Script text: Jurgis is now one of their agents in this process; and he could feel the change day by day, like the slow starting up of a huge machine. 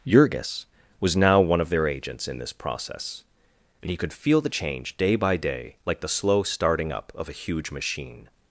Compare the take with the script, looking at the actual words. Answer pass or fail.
fail